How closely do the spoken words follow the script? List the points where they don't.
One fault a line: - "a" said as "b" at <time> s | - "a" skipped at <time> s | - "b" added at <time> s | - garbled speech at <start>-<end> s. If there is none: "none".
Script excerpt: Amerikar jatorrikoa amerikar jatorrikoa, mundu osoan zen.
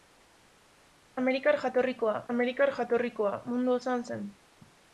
none